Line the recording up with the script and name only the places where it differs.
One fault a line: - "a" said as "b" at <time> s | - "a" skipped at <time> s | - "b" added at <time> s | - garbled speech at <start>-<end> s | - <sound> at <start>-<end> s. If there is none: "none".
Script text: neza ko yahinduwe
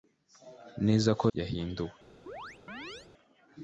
- chirp at 2.3-3.1 s